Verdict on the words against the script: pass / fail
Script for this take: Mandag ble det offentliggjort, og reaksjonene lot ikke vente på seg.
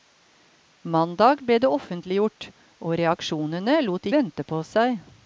fail